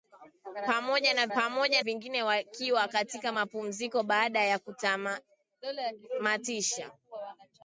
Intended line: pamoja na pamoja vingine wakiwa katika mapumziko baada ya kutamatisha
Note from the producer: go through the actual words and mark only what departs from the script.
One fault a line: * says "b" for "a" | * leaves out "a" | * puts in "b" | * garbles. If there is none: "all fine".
all fine